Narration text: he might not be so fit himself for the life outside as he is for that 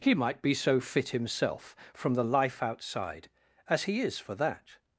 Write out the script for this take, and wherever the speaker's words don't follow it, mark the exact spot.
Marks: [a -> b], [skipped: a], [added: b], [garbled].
he might [skipped: not] be so fit himself [for -> from] the life outside as he is for that